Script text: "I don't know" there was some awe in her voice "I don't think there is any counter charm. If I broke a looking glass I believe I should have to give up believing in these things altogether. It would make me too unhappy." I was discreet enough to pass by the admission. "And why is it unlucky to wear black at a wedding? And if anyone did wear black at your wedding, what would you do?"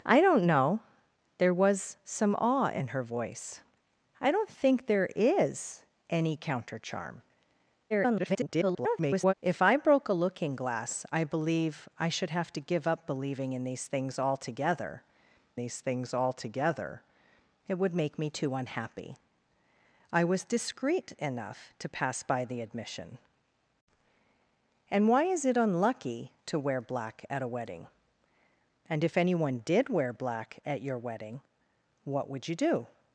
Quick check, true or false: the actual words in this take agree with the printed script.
false